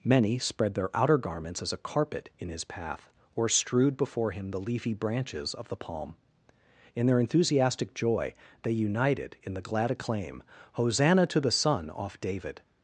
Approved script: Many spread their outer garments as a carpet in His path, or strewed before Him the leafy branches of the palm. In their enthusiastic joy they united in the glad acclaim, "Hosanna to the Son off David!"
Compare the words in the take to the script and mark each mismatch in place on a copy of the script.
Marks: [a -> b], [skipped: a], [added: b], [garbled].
Many spread their outer garments as a carpet in His path, or strewed before Him the leafy branches of the palm. In their enthusiastic joy they united in the glad acclaim, "Hosanna to the Son off David!"